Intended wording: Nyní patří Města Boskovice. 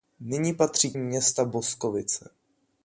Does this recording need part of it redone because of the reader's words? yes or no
no